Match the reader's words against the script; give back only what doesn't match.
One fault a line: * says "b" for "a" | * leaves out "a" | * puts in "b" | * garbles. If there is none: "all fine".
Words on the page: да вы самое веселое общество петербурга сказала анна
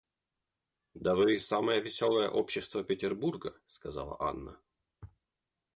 all fine